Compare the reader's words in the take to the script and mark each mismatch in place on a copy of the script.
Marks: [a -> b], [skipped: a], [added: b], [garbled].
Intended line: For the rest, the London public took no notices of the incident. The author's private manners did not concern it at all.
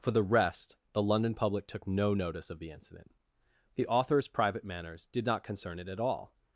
For the rest, the London public took no [notices -> notice] of the incident. The author's private manners did not concern it at all.